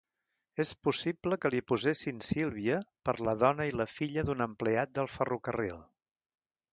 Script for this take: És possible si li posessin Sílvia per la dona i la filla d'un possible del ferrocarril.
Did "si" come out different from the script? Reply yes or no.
yes